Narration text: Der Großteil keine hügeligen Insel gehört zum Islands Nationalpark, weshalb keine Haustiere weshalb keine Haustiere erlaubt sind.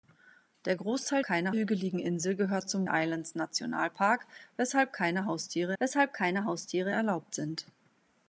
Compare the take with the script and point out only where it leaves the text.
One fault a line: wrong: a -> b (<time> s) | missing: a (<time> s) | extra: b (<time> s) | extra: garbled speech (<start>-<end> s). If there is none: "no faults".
no faults